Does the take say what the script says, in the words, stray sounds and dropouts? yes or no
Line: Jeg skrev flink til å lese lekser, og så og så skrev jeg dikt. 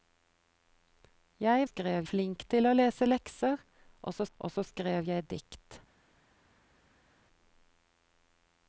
yes